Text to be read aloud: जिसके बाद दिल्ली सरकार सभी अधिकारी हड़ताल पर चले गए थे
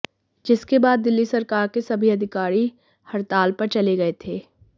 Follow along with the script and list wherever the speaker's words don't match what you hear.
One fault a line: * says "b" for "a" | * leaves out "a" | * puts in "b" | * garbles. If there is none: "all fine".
* puts in "के"